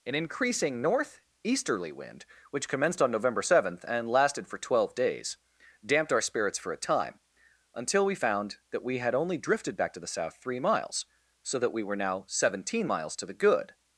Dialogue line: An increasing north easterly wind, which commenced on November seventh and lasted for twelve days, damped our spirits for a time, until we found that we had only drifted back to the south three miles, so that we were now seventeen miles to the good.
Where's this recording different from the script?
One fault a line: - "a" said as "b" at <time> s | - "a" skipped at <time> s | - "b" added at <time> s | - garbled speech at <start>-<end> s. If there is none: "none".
none